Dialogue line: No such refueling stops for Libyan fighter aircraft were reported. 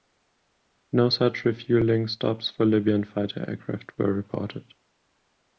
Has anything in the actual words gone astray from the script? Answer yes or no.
no